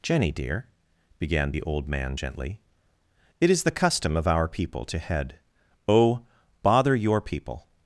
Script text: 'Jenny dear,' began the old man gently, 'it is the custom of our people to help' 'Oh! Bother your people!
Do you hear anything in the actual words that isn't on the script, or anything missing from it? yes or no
yes